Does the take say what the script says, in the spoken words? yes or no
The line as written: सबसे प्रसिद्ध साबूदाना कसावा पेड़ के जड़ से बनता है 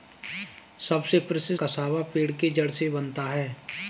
no